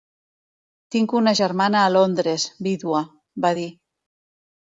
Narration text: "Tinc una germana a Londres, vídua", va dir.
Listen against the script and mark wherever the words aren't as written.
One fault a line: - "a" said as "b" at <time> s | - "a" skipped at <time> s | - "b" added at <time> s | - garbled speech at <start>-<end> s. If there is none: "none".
none